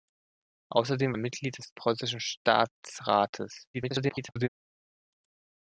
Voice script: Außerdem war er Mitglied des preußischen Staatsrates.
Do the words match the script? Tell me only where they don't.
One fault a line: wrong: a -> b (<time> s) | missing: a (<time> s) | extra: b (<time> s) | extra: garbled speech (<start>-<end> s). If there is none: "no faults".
missing: war (1.1 s)
extra: garbled speech (3.7-4.5 s)